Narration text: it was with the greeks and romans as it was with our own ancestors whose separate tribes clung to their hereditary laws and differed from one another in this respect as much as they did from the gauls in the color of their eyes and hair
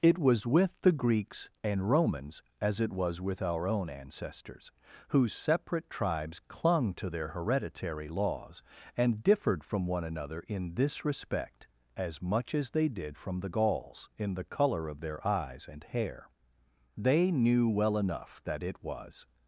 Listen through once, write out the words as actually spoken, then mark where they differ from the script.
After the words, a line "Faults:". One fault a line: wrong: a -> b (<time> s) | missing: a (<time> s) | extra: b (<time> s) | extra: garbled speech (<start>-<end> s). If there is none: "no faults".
it was with the greeks and romans as it was with our own ancestors whose separate tribes clung to their hereditary laws and differed from one another in this respect as much as they did from the gauls in the color of their eyes and hair they knew well enough that it was
Faults:
extra: they knew well enough that it was (17.0 s)